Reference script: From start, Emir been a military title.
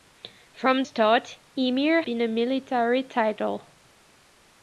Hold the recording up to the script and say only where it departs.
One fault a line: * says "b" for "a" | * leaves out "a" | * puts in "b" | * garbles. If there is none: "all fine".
all fine